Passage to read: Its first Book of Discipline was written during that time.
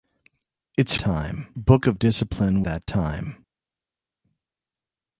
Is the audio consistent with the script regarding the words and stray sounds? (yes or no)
no